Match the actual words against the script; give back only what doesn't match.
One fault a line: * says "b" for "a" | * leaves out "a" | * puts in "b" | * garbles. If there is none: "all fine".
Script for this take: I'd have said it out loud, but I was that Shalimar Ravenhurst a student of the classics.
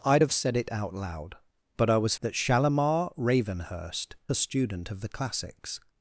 all fine